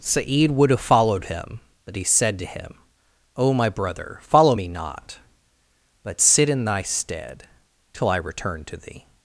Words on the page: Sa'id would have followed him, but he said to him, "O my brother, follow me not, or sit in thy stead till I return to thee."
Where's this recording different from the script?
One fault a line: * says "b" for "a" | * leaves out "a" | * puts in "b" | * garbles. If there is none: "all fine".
* says "but" for "or"